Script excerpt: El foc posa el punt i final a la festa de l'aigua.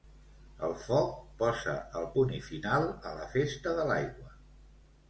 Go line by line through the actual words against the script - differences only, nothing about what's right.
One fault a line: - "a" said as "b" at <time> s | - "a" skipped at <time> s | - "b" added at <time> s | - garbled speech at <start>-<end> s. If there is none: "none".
none